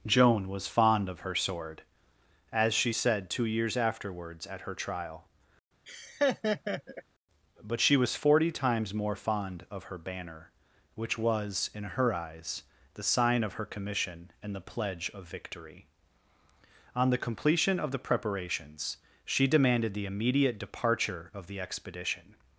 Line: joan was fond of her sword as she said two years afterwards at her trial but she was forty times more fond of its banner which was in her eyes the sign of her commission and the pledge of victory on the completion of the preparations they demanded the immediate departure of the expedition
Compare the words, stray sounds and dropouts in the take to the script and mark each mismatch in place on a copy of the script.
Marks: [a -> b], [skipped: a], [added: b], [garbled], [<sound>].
joan was fond of her sword as she said two years afterwards at her trial [laugh] but she was forty times more fond of [its -> her] banner which was in her eyes the sign of her commission and the pledge of victory on the completion of the preparations [they -> she] demanded the immediate departure of the expedition